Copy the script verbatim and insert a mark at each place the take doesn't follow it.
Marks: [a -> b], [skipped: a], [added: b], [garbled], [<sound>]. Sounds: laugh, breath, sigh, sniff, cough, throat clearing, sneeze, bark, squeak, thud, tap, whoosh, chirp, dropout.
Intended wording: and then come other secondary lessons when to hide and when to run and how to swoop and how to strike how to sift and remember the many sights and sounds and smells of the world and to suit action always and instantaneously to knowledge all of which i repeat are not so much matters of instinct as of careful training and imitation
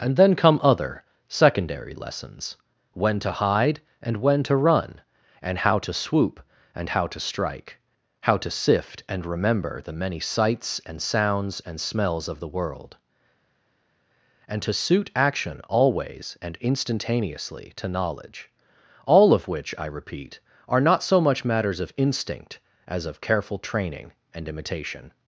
and then come other secondary lessons when to hide and when to run and how to swoop and how to strike how to sift and remember the many sights and sounds and smells of the world and to suit action always and instantaneously to knowledge all of which i repeat are not so much matters of instinct as of careful training and imitation